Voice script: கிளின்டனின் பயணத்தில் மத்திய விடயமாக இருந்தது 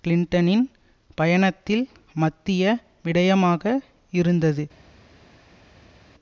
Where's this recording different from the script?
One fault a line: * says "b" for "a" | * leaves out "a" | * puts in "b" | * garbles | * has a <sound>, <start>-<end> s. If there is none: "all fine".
all fine